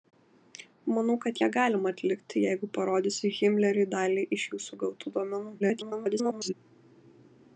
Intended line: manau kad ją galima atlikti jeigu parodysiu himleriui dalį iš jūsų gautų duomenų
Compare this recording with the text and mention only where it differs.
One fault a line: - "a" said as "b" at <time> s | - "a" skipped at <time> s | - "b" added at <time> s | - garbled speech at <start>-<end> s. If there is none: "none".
- garbled speech at 5.6-6.5 s